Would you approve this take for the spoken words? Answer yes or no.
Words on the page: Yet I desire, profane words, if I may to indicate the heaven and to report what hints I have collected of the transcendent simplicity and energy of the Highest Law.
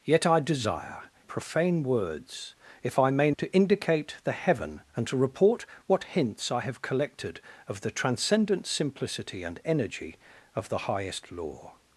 yes